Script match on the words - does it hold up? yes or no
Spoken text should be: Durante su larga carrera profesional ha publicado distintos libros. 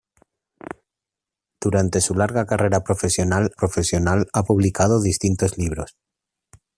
no